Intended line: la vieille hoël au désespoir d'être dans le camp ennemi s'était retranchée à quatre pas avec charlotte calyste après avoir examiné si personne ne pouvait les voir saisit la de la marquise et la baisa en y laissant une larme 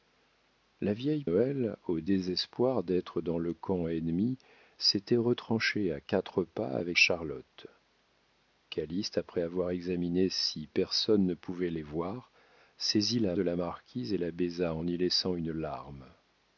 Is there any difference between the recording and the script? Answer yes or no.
no